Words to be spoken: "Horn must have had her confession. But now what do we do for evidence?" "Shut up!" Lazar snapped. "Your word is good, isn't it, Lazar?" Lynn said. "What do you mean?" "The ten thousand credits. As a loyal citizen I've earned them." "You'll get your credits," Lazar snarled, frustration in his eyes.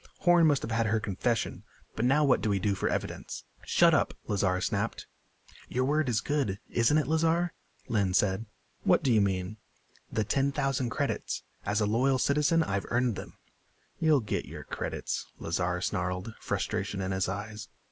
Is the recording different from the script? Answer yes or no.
no